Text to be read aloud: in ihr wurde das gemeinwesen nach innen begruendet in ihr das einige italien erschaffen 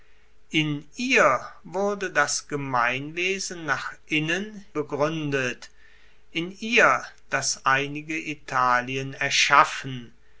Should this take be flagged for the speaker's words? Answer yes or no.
no